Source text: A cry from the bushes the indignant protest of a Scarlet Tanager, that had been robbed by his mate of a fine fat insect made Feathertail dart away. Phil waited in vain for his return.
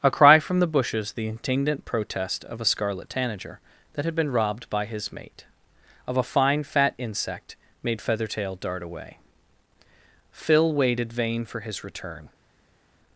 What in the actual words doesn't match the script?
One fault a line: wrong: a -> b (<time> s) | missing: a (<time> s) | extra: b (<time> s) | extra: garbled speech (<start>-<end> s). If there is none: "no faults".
missing: in (11.1 s)